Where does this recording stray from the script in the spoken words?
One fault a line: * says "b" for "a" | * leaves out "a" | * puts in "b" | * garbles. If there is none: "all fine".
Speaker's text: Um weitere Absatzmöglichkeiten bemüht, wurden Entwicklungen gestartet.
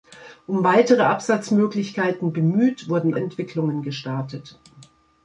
all fine